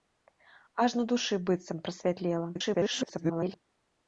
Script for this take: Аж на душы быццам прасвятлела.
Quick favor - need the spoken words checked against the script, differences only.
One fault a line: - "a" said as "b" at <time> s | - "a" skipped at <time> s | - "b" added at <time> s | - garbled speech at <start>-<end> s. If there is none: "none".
- garbled speech at 2.5-3.6 s